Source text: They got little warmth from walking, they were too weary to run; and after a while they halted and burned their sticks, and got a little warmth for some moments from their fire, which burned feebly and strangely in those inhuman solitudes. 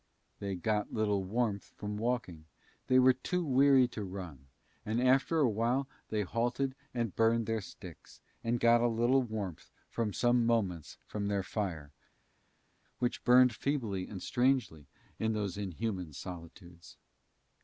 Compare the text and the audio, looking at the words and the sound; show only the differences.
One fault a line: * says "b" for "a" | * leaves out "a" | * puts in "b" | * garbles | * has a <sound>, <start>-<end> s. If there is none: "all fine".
all fine